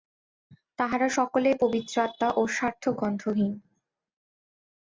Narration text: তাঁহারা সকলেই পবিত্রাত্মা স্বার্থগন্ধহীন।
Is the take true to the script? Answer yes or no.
no